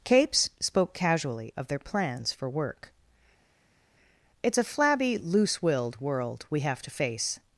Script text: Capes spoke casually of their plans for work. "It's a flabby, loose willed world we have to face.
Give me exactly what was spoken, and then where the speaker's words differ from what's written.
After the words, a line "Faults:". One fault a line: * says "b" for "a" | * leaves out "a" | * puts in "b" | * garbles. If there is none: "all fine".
Capes spoke casually of their plans for work. "It's a flabby, loose willed world we have to face.
Faults:
all fine